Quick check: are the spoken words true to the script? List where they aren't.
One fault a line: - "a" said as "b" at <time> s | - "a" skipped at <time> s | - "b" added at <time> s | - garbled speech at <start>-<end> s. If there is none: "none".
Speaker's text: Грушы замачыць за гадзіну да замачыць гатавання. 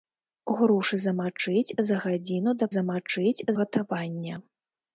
none